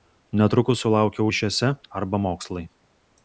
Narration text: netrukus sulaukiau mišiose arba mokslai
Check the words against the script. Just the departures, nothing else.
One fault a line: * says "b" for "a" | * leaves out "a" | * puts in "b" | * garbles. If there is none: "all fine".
all fine